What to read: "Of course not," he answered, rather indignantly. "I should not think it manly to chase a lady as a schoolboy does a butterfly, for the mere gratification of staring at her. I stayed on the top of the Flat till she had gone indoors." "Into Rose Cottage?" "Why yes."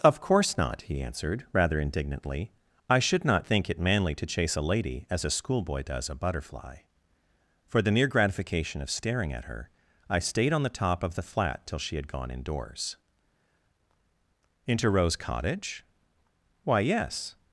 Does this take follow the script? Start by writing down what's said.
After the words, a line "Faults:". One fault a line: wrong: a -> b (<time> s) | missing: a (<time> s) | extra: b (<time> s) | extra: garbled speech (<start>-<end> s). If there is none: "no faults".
"Of course not," he answered, rather indignantly. "I should not think it manly to chase a lady as a schoolboy does a butterfly, for the mere gratification of staring at her. I stayed on the top of the Flat till she had gone indoors." "Into Rose Cottage?" "Why yes."
Faults:
no faults